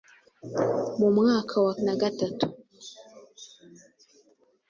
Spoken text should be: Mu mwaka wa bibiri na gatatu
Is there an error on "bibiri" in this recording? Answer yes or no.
yes